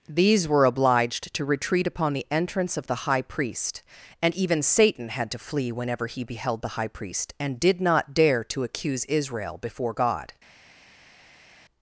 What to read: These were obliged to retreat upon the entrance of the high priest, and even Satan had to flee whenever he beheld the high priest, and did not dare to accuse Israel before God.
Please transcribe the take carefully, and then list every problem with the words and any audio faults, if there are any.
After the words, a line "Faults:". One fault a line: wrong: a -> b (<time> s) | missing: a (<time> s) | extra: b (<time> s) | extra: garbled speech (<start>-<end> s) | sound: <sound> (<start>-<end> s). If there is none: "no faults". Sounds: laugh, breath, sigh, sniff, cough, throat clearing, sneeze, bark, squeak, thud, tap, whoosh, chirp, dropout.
These were obliged to retreat upon the entrance of the high priest, and even Satan had to flee whenever he beheld the high priest, and did not dare to accuse Israel before God.
Faults:
no faults